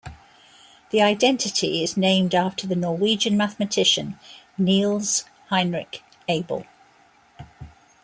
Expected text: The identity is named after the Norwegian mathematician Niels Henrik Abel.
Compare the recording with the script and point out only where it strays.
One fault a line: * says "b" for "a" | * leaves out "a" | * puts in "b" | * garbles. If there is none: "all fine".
all fine